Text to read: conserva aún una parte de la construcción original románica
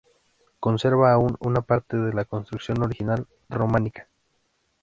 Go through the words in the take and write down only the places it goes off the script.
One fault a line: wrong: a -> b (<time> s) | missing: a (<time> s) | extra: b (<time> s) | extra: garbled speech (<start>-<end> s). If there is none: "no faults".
no faults